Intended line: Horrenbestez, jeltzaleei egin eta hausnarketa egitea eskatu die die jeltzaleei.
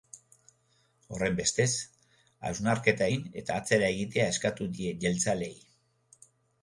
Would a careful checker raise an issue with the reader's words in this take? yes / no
yes